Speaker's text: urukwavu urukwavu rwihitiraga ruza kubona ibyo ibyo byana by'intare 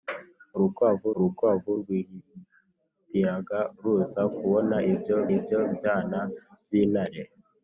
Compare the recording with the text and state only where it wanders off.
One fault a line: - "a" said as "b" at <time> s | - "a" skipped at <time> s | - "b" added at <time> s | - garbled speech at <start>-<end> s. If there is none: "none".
none